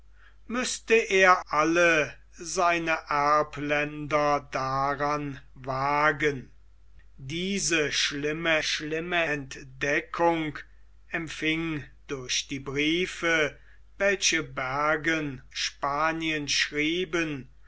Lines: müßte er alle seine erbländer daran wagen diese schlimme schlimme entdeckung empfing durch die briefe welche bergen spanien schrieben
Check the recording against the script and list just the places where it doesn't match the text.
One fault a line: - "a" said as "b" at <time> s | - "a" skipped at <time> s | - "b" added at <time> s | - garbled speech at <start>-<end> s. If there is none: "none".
none